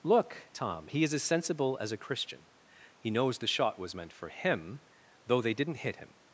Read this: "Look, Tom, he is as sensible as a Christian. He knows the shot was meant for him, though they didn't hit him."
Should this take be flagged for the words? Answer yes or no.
no